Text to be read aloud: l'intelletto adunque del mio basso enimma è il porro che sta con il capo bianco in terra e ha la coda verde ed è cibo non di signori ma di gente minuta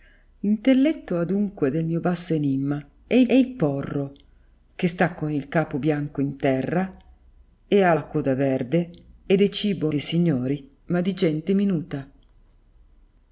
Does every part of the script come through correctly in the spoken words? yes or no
no